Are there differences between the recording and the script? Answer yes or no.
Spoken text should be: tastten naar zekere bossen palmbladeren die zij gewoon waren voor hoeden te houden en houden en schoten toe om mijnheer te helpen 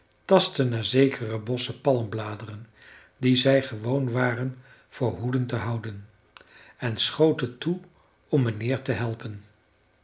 yes